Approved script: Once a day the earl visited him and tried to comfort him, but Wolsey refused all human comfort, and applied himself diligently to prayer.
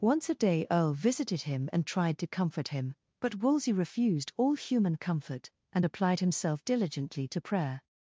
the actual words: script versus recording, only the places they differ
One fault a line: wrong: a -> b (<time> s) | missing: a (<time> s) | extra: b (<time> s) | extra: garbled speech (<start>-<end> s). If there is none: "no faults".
missing: the (0.7 s)